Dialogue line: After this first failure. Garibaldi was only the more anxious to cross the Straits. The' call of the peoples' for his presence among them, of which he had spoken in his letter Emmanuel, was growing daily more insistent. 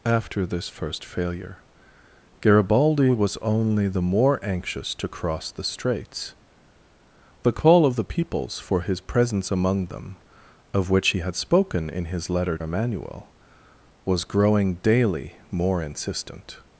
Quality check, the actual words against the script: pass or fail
pass